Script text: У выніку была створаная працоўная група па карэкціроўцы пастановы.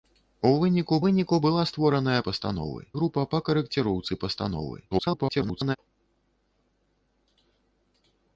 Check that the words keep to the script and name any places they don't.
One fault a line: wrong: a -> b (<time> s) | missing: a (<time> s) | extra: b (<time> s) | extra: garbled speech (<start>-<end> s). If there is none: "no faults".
extra: выніку (1.0 s)
wrong: працоўная -> пастановы (2.3 s)
extra: garbled speech (4.9-5.8 s)